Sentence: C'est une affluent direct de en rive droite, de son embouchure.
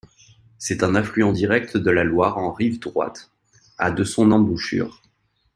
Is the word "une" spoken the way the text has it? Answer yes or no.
no